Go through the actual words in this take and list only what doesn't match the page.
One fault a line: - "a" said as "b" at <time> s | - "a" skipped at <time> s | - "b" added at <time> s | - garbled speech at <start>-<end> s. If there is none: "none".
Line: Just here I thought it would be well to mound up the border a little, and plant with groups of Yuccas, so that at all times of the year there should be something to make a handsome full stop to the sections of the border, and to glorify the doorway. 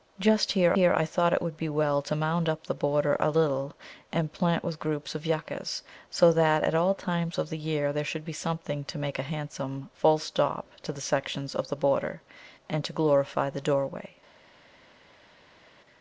- "here" added at 0.7 s